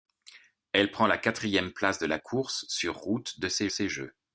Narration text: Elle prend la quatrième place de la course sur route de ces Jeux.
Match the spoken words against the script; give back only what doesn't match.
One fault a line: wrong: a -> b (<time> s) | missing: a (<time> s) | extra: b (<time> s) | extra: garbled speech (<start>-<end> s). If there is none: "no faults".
extra: ces (3.7 s)